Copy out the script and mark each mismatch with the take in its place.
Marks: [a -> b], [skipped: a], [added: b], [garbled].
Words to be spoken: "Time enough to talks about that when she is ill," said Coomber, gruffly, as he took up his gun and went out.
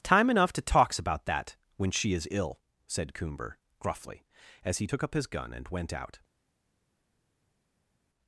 "Time enough to talks about that when she is ill," said Coomber, gruffly, as he took up his gun and went out.